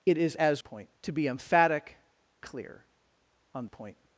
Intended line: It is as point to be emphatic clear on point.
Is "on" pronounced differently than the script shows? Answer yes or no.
no